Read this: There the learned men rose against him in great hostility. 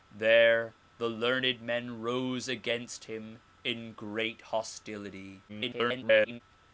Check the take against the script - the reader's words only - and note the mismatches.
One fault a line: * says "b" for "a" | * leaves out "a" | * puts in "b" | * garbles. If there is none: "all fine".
* garbles